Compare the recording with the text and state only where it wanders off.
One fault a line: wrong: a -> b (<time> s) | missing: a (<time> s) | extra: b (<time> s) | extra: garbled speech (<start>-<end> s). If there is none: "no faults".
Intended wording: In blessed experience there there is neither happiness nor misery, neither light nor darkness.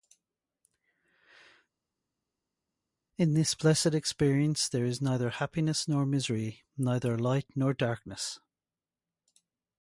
extra: this (3.3 s)
missing: there (4.8 s)